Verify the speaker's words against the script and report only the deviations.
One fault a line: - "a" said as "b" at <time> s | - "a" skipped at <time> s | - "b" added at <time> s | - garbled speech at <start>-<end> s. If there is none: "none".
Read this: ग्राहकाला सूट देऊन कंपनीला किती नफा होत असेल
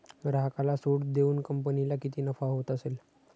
none